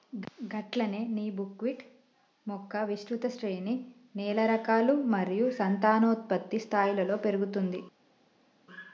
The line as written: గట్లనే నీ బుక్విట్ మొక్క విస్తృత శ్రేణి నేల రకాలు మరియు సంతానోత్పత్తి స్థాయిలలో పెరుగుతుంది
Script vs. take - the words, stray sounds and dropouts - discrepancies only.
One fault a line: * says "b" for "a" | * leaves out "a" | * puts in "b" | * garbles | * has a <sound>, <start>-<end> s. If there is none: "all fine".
all fine